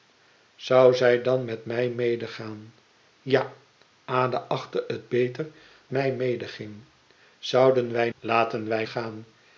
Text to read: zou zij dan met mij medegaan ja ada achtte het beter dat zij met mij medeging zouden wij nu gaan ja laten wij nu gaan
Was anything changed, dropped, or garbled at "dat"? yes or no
yes